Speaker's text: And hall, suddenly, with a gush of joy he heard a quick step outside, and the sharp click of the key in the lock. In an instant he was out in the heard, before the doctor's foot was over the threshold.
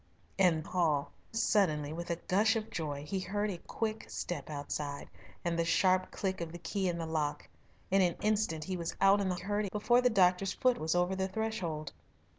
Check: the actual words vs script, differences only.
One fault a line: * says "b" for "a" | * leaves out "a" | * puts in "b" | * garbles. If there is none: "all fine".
all fine